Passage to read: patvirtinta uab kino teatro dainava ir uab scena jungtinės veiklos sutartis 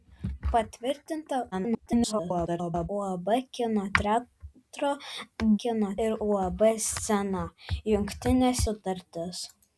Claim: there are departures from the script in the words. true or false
true